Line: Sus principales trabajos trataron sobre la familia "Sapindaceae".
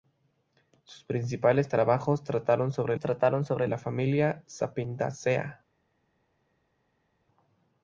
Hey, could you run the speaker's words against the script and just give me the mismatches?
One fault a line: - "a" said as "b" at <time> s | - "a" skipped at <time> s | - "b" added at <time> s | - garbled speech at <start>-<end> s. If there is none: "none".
- "trataron sobre" added at 3.0 s